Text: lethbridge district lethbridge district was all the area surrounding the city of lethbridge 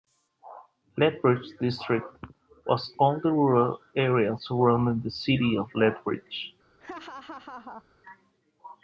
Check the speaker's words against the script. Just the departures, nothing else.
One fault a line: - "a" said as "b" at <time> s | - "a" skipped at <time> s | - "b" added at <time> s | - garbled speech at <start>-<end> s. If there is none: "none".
- "lethbridge district" skipped at 2.1 s
- "rural" added at 3.3 s